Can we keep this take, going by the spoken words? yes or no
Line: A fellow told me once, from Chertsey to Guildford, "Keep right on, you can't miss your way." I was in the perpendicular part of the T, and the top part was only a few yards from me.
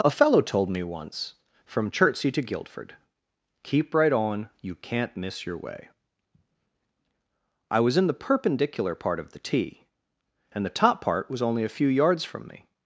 yes